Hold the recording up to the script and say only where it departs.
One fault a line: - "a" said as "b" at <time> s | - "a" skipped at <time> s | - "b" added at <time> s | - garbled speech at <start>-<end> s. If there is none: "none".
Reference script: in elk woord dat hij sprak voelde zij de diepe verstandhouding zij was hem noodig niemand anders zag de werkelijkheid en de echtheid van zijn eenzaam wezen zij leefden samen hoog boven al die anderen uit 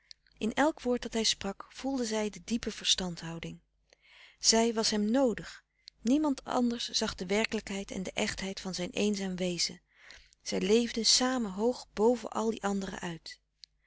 none